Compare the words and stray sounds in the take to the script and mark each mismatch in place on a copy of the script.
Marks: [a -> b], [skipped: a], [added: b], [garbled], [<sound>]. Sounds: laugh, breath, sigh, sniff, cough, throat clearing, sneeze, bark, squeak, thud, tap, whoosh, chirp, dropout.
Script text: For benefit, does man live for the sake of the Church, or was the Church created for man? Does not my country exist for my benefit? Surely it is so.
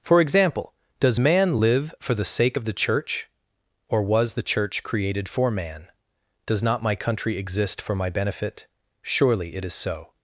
For [benefit, -> example] does man live for the sake of the Church, or was the Church created for man? Does not my country exist for my benefit? Surely it is so.